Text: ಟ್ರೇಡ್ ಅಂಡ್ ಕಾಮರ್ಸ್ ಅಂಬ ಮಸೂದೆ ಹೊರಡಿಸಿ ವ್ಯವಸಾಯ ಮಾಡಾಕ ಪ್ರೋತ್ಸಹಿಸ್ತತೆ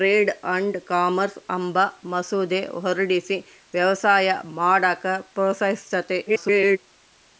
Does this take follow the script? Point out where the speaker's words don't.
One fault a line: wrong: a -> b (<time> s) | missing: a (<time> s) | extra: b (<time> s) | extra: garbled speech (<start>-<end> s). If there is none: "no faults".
extra: garbled speech (6.3-6.8 s)